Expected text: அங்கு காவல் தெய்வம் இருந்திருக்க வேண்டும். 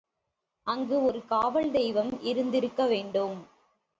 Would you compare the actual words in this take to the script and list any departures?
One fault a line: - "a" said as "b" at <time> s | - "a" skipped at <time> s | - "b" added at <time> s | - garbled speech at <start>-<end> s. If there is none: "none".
- "ஒரு" added at 1.0 s